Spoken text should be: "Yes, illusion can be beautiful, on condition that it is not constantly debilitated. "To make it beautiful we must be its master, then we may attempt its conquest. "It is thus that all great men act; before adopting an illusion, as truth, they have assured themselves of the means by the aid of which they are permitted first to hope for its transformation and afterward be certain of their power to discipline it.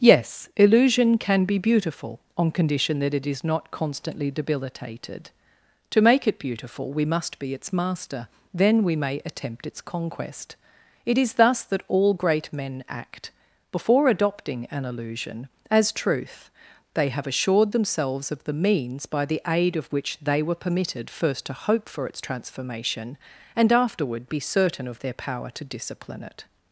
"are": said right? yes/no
no